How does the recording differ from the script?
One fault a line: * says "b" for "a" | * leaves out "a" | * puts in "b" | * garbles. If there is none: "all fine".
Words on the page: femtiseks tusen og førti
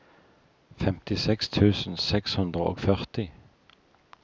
* puts in "seks hundre"